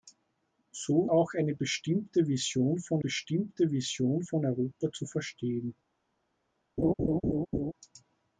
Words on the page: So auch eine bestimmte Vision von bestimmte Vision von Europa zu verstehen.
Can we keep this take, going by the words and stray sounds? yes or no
no